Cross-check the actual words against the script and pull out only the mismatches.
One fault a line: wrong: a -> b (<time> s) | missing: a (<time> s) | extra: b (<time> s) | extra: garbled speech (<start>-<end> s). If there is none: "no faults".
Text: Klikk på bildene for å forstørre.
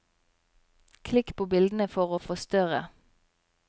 no faults